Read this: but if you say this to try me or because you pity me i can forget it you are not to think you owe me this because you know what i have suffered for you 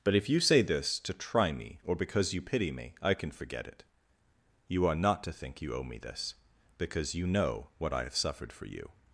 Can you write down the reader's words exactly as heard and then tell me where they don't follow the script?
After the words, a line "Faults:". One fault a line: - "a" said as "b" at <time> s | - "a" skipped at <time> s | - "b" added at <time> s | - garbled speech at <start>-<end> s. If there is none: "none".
but if you say this to try me or because you pity me i can forget it you are not to think you owe me this because you know what i have suffered for you
Faults:
none